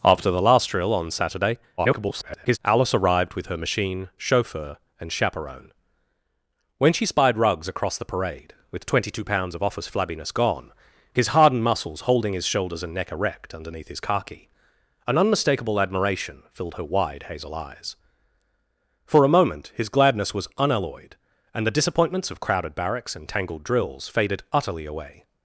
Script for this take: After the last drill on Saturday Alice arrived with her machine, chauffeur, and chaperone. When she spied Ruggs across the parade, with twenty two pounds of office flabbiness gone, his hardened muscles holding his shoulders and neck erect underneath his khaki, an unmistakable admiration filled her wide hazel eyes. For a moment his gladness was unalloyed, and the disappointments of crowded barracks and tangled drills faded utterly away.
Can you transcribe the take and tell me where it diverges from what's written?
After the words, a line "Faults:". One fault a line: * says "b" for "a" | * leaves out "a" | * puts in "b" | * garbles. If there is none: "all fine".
After the last drill on Saturday [garbled] Alice arrived with her machine, chauffeur, and chaperone. When she spied Ruggs across the parade, with twenty two pounds of office flabbiness gone, his hardened muscles holding his shoulders and neck erect underneath his khaki, an unmistakable admiration filled her wide hazel eyes. For a moment his gladness was unalloyed, and the disappointments of crowded barracks and tangled drills faded utterly away.
Faults:
* garbles